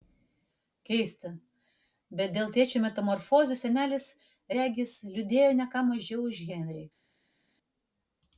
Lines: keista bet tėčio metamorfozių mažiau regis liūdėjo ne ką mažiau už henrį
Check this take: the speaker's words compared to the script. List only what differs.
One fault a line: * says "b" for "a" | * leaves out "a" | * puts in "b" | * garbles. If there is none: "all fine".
* puts in "dėl"
* says "senelis" for "mažiau"